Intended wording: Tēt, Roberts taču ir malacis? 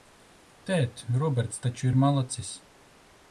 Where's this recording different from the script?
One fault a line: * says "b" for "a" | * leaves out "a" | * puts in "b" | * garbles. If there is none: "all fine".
all fine